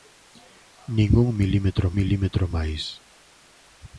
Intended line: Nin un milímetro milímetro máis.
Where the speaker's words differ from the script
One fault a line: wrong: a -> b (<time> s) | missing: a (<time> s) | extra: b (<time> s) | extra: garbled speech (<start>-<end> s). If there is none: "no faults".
no faults